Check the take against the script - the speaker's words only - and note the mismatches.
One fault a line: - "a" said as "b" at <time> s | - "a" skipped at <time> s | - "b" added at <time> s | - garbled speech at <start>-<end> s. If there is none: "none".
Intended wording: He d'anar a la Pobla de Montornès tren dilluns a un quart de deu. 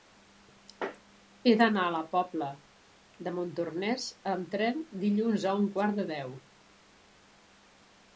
- "amb" added at 4.3 s